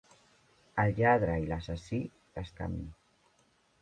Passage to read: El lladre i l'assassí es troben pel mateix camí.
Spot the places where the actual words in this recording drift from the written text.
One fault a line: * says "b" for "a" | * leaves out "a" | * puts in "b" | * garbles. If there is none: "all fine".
* leaves out "troben pel mateix"